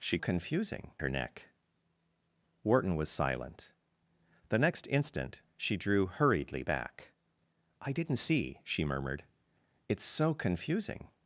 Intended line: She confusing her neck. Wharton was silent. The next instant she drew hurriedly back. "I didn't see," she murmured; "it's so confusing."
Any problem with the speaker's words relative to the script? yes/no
no